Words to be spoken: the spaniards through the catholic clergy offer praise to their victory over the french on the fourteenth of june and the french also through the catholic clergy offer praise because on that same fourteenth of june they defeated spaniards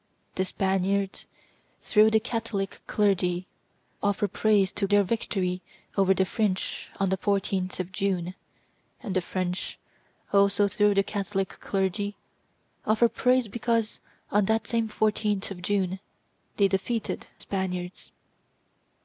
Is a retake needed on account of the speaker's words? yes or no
no